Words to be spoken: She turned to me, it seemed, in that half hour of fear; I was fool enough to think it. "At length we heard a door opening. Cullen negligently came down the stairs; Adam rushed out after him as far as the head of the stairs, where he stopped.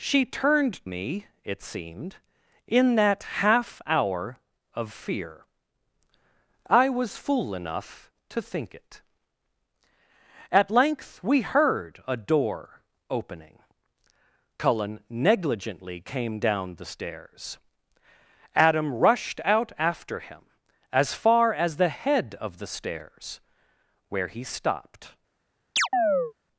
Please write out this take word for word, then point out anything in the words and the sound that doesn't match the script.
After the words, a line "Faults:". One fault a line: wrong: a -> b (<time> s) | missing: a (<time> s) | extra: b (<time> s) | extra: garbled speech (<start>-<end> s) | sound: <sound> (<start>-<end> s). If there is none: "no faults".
She turned me, it seemed, in that half hour of fear; I was fool enough to think it. "At length we heard a door opening. Cullen negligently came down the stairs; Adam rushed out after him as far as the head of the stairs, where he stopped.
Faults:
missing: to (0.8 s)
sound: chirp (25.8-26.3 s)